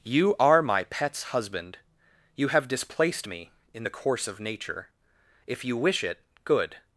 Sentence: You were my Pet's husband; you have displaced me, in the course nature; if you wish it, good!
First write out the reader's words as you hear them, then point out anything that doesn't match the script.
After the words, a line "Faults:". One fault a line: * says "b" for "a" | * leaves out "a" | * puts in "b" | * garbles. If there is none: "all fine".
You are my Pet's husband; you have displaced me, in the course of nature; if you wish it, good!
Faults:
* says "are" for "were"
* puts in "of"